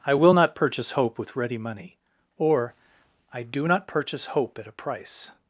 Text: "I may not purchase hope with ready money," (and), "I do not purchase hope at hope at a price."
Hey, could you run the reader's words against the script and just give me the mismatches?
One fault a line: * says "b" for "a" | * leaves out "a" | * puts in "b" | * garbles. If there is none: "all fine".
* says "will" for "may"
* says "or" for "and"
* leaves out "hope at"